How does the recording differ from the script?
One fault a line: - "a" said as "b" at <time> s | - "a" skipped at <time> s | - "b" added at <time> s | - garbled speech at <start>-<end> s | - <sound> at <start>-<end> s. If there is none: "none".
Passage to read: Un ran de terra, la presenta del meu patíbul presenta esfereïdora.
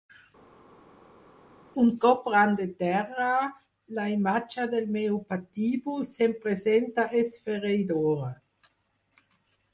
- "cop" added at 2.0 s
- "presenta" said as "imatge" at 4.1 s
- "se'm" added at 6.2 s